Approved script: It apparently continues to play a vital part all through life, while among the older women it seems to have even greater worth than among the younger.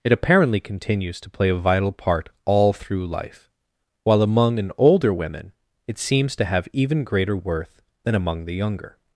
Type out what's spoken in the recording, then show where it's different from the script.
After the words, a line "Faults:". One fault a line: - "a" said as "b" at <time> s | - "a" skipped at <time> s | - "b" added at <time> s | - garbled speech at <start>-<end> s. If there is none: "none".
It apparently continues to play a vital part all through life, while among an older women it seems to have even greater worth than among the younger.
Faults:
- "the" said as "an" at 4.6 s